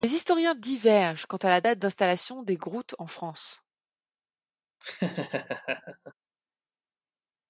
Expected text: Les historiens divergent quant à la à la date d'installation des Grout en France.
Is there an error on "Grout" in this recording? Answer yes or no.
no